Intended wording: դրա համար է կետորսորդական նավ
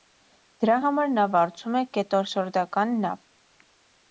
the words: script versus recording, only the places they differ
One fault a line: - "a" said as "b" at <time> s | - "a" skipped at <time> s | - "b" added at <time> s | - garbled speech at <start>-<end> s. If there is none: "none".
- "նա վարձում" added at 1.2 s